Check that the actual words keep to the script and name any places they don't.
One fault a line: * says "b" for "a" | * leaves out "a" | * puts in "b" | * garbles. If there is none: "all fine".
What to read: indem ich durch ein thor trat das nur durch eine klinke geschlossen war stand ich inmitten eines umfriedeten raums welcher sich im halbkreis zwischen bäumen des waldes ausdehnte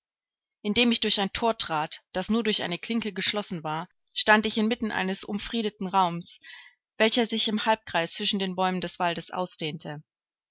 * puts in "den"